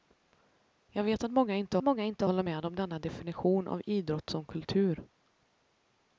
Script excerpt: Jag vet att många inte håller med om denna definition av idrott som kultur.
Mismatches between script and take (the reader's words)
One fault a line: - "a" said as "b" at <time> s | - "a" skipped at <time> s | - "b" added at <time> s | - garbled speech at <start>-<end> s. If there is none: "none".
- "många inte" added at 1.8 s